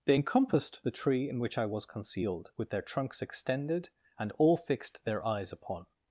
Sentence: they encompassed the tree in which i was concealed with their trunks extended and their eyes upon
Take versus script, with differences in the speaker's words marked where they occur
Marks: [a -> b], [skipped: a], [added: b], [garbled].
they encompassed the tree in which i was concealed with their trunks extended and [added: all fixed] their eyes upon